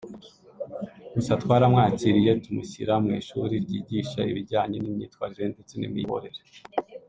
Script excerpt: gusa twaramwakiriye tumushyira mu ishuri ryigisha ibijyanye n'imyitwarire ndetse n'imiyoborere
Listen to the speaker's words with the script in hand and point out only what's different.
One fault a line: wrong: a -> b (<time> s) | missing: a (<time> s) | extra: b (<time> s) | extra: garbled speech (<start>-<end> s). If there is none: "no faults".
no faults